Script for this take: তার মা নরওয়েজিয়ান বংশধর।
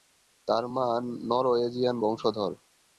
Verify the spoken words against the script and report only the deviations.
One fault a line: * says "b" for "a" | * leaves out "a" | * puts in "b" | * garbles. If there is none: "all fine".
all fine